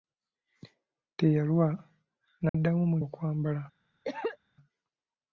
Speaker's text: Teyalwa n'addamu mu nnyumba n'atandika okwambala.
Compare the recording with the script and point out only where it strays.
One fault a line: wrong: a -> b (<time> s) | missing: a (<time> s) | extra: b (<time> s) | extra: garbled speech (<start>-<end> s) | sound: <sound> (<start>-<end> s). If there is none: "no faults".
sound: dropout (2.5-2.5 s)
missing: nnyumba n'atandika (3.0 s)
sound: cough (4.1-4.4 s)